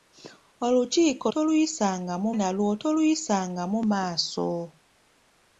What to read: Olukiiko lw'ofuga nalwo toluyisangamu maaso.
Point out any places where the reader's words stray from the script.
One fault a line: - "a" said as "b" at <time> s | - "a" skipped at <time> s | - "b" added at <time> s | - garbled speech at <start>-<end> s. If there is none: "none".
- "lw'ofuga" said as "toluyisangamu" at 1.3 s